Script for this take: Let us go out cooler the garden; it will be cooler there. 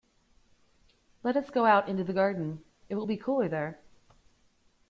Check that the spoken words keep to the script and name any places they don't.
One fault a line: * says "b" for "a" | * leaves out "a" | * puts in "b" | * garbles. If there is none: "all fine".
* says "into" for "cooler"